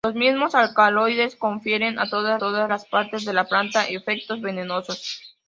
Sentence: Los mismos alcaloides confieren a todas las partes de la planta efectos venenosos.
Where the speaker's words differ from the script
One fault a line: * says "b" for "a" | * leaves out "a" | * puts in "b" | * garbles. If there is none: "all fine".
* puts in "todas"